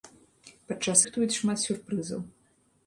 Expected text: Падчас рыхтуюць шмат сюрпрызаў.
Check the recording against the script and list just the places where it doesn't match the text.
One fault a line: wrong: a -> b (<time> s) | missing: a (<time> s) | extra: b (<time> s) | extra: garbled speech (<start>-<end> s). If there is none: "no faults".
no faults